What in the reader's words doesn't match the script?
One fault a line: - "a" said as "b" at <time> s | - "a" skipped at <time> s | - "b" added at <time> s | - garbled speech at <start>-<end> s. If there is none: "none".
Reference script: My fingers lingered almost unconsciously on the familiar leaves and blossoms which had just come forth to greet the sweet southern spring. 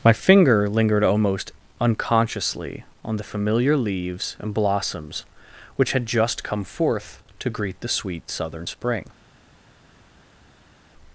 - "fingers" said as "finger" at 0.1 s